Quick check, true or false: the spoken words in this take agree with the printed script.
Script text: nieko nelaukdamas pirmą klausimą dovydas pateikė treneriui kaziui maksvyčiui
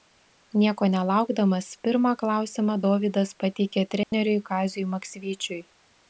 true